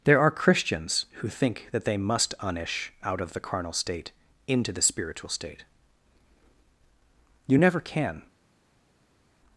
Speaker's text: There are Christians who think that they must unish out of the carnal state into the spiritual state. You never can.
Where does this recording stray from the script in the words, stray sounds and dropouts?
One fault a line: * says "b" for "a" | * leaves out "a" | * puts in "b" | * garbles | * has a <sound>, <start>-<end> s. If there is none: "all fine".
all fine